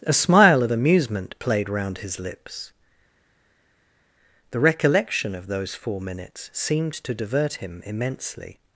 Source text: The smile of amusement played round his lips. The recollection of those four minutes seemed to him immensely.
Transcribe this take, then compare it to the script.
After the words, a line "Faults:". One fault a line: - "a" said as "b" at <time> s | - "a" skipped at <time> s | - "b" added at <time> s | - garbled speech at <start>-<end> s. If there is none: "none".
A smile of amusement played round his lips. The recollection of those four minutes seemed to divert him immensely.
Faults:
- "The" said as "A" at 0.0 s
- "divert" added at 7.1 s